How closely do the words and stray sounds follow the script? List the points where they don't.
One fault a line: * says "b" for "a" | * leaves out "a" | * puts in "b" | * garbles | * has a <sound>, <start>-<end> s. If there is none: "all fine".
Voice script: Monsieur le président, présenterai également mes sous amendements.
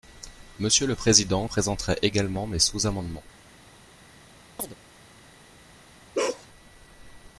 * has a chirp, 4.6-4.8 s
* has a bark, 6.1-6.5 s